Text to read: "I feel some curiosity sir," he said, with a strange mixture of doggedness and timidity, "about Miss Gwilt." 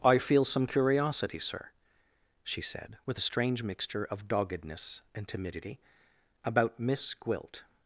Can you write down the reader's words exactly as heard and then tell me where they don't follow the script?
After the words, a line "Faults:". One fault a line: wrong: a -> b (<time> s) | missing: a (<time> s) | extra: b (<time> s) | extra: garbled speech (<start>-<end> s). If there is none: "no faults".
"I feel some curiosity sir," she said, with a strange mixture of doggedness and timidity, "about Miss Gwilt."
Faults:
wrong: he -> she (2.4 s)